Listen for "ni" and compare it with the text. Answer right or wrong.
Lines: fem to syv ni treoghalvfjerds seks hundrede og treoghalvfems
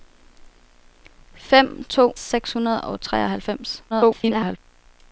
wrong